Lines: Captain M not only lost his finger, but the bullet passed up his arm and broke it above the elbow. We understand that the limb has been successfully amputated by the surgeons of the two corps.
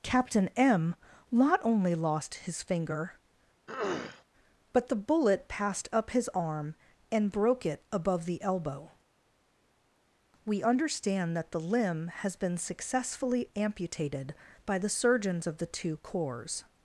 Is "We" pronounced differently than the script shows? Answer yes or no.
no